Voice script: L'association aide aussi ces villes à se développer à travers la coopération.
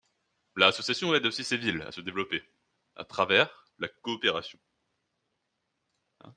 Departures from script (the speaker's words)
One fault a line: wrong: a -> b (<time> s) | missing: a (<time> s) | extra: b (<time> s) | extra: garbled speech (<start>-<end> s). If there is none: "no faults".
no faults